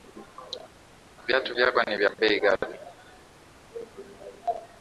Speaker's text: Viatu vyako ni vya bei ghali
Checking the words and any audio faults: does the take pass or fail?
pass